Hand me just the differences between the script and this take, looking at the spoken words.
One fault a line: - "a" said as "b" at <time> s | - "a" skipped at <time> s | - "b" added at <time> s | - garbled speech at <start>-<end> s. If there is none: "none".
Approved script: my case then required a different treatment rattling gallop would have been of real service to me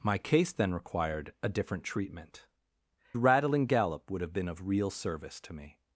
none